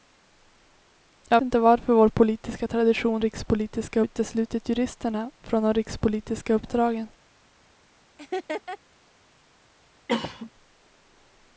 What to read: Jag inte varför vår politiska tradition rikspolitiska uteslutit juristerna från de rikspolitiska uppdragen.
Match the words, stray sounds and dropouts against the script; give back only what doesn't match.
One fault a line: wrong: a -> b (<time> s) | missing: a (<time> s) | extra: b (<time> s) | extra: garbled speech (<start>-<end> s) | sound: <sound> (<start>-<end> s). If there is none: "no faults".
sound: laugh (8.2-8.8 s)
sound: cough (10.1-10.5 s)